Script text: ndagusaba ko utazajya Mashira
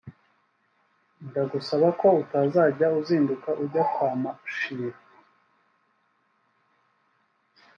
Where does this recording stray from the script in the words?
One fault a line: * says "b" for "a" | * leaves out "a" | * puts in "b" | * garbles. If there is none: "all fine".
* puts in "uzinduka ujya kwa"